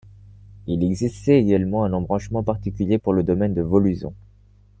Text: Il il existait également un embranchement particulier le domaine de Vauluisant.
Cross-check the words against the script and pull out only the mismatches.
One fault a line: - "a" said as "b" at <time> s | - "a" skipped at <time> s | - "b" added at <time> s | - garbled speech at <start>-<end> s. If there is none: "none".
- "il" skipped at 0.8 s
- "pour" added at 3.0 s